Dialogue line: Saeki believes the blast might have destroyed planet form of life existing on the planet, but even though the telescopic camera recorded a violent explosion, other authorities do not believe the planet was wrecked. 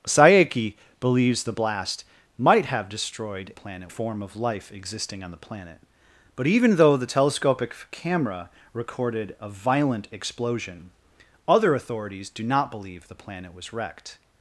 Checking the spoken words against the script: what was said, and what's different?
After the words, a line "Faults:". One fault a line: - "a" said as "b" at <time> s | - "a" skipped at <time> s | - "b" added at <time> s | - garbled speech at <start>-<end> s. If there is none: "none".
Saeki believes the blast might have destroyed planet form of life existing on the planet, but even though the telescopic camera recorded a violent explosion, other authorities do not believe the planet was wrecked.
Faults:
none